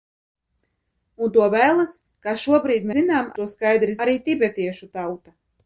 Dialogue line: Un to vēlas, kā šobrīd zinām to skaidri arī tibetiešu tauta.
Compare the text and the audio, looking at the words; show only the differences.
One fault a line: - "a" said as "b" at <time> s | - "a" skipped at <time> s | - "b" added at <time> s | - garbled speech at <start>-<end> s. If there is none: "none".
none